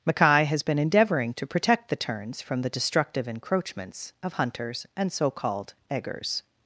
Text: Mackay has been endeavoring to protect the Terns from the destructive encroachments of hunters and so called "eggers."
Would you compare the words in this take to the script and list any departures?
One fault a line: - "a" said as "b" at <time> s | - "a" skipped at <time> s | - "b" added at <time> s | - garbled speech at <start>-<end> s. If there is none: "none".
none